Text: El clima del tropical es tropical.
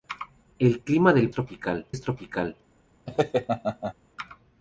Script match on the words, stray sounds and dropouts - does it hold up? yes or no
no